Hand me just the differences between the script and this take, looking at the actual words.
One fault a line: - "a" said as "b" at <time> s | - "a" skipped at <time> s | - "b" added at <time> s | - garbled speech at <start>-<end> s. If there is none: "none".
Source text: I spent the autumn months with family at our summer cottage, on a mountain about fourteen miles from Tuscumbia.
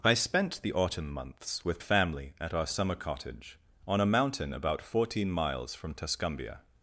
none